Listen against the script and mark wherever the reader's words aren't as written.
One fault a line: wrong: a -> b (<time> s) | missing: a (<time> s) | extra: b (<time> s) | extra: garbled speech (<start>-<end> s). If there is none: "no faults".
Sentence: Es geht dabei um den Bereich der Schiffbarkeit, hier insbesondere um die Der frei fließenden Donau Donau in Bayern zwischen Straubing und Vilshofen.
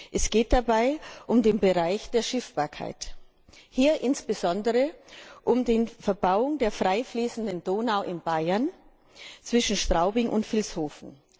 extra: Verbauung (5.9 s)
missing: Donau (8.0 s)